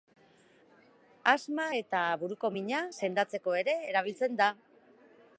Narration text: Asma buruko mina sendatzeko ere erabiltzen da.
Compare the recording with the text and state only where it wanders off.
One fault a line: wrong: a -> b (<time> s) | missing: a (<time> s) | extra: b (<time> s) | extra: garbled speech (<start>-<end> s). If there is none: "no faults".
extra: eta (1.8 s)